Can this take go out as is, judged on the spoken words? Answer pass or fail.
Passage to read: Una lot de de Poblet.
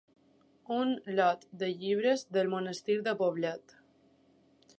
fail